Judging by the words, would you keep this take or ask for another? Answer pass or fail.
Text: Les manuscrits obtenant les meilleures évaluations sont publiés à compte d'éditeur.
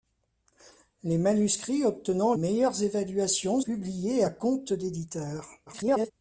fail